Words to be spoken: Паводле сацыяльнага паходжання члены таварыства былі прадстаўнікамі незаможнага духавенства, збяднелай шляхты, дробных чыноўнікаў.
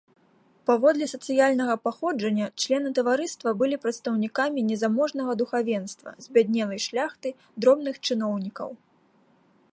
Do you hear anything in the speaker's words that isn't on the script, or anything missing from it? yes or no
no